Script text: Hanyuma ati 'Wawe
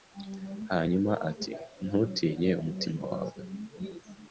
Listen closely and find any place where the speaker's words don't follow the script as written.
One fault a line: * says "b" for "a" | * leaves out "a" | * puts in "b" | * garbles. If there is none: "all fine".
* puts in "Ntutinye umutima"